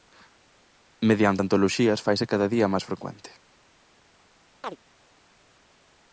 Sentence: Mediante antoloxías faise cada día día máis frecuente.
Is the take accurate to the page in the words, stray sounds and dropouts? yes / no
no